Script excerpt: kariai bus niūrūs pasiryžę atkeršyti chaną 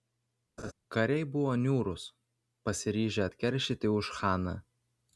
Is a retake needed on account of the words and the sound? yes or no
yes